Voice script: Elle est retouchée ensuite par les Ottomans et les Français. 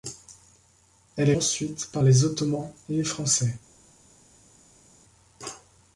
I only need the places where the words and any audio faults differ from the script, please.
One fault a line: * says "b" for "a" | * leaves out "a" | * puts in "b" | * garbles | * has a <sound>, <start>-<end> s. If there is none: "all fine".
* leaves out "retouchée"